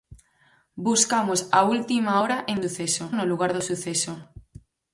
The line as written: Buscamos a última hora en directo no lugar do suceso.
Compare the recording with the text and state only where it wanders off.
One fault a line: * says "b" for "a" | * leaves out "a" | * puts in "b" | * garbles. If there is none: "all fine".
* says "suceso" for "directo"